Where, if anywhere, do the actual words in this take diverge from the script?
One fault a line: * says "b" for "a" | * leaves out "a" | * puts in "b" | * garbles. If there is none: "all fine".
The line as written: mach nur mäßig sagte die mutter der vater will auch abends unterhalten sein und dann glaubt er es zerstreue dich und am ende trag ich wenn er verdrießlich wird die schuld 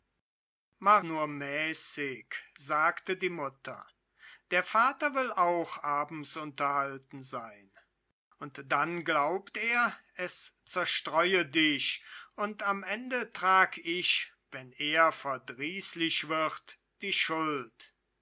all fine